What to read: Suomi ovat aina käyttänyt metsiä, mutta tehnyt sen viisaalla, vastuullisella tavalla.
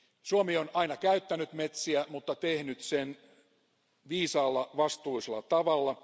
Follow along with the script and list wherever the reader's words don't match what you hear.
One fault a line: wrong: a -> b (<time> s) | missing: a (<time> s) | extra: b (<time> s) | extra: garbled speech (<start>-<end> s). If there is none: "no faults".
wrong: ovat -> on (0.6 s)